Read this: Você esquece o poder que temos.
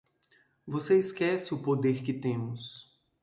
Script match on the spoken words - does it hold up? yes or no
yes